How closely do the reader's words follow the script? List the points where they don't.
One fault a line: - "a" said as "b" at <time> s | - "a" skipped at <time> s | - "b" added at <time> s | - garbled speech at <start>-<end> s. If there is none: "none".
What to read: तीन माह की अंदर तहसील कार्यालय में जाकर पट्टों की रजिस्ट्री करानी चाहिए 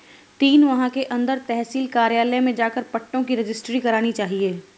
- "की" said as "के" at 0.9 s